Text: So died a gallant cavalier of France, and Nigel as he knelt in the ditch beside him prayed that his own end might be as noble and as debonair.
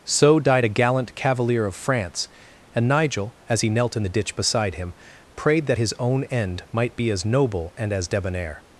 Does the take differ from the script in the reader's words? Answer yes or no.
no